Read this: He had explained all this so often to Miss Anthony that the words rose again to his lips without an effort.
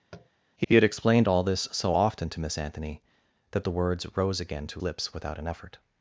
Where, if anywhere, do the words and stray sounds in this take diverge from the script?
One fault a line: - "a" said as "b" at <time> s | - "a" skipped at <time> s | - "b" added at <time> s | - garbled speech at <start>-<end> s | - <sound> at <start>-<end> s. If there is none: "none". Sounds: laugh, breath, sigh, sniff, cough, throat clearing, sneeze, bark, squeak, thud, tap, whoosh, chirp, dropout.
- tap at 0.1-0.3 s
- "he" added at 0.6 s
- "his" skipped at 4.8 s